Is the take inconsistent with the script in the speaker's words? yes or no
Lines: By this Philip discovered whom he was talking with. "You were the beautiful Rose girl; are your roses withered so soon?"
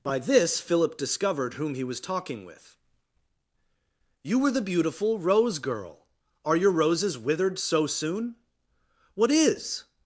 yes